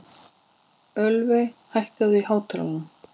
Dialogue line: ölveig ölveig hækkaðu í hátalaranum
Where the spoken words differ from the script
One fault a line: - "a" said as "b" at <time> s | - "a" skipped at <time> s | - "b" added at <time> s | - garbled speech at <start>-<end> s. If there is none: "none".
- "ölveig" skipped at 1.5 s